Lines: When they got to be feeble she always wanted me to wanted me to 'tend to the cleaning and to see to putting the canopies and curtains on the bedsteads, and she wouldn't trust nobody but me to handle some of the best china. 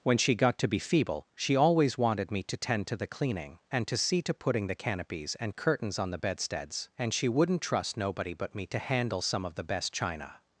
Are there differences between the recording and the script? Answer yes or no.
yes